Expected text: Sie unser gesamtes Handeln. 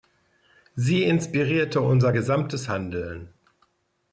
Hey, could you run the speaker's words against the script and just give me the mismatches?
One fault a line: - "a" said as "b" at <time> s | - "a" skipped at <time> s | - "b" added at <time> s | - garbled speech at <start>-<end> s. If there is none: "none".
- "inspirierte" added at 1.0 s